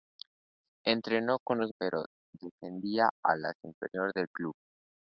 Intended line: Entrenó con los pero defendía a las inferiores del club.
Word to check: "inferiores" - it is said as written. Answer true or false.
true